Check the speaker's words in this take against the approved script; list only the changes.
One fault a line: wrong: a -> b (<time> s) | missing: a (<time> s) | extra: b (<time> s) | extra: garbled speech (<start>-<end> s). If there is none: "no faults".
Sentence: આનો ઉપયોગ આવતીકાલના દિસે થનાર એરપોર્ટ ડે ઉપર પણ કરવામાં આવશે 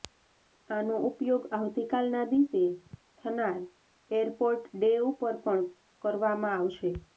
no faults